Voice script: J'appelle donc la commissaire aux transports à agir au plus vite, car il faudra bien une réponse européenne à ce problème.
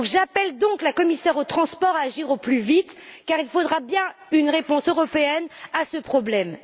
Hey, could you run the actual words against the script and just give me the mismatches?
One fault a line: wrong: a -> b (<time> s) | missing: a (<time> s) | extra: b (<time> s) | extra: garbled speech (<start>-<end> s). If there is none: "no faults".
no faults